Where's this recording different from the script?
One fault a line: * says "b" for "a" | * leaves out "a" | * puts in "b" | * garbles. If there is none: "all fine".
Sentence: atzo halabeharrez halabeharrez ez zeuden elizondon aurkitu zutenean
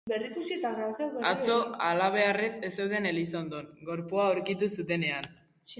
* leaves out "halabeharrez"
* puts in "gorpua"